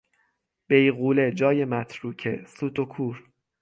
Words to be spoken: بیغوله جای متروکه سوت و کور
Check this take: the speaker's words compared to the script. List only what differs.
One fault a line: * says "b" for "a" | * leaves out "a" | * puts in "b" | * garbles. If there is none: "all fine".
all fine